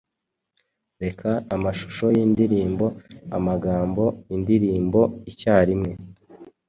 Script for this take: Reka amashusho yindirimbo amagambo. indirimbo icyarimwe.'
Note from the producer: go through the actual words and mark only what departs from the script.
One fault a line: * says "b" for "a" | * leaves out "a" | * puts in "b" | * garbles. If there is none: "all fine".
all fine